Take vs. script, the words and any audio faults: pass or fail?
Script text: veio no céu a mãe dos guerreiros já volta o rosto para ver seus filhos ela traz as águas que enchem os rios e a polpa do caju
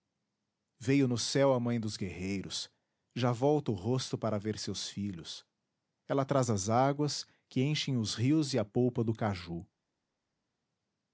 pass